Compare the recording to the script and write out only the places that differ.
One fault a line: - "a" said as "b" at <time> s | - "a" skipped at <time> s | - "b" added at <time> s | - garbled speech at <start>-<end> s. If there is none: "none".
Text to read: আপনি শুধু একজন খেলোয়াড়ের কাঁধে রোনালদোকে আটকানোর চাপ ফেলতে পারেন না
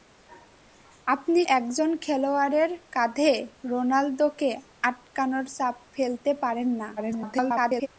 - "শুধু" skipped at 1.4 s
- garbled speech at 7.0-7.9 s